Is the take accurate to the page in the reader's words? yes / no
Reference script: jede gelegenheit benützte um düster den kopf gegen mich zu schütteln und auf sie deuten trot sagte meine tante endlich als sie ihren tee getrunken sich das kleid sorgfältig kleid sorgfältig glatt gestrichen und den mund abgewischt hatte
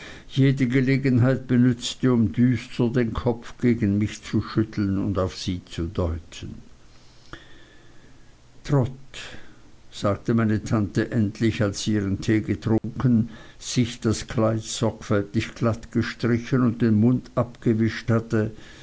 no